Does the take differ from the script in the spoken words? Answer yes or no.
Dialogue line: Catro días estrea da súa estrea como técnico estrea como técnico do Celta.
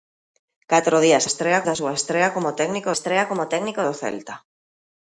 no